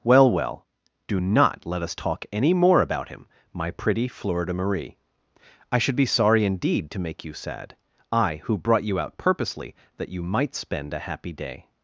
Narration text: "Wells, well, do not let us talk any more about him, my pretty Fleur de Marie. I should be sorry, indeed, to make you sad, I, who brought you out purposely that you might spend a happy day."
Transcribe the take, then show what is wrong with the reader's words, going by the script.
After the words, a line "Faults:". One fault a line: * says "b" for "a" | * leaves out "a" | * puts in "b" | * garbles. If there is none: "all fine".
"Well, well, do not let us talk any more about him, my pretty Fleur de Marie. I should be sorry, indeed, to make you sad, I, who brought you out purposely that you might spend a happy day."
Faults:
* says "Well" for "Wells"